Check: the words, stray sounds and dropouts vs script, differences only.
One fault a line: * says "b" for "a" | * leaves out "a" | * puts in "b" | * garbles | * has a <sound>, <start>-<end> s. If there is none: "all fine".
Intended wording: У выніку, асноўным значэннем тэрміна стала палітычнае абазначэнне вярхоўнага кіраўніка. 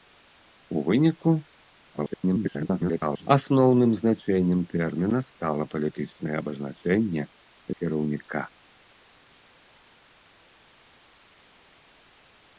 * garbles
* leaves out "вярхоўнага"